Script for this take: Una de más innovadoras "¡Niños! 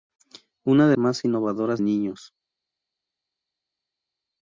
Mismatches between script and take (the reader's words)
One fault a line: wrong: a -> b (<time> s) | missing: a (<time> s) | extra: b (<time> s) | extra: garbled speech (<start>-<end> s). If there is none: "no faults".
no faults